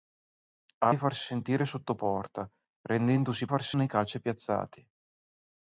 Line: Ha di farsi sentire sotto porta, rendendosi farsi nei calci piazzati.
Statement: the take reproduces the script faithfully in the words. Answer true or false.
true